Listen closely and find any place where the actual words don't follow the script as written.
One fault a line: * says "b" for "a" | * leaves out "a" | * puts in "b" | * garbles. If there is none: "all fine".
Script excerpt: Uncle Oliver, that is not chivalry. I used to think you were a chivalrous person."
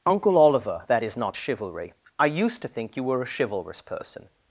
all fine